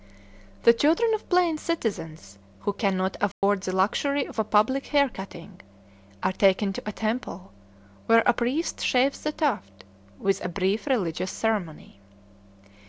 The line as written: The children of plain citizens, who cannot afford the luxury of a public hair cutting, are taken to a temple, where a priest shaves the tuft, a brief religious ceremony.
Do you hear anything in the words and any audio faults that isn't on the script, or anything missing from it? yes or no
yes